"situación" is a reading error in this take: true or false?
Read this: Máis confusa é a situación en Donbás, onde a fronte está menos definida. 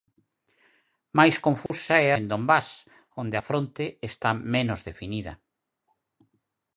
true